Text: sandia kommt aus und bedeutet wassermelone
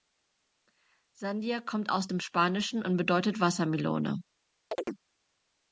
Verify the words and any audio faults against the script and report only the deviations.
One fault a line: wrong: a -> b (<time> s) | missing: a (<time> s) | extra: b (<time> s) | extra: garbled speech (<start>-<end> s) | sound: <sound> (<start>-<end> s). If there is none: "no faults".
extra: dem spanischen (2.0 s)
sound: chirp (4.7-5.0 s)